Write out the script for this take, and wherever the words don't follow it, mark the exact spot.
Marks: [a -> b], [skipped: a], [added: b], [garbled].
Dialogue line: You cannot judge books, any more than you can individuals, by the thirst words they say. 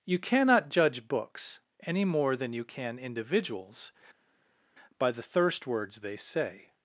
You cannot judge books, any more than you can individuals, by the thirst words they say.